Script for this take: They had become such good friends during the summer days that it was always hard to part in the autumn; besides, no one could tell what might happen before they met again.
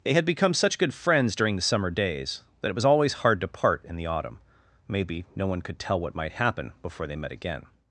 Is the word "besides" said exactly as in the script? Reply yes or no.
no